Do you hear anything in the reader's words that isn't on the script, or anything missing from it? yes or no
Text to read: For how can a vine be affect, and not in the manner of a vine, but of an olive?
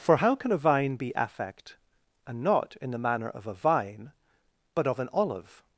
no